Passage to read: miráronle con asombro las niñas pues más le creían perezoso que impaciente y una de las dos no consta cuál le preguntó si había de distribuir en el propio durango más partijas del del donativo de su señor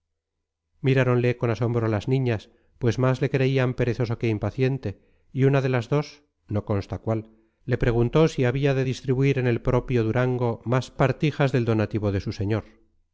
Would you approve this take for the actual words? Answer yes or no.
no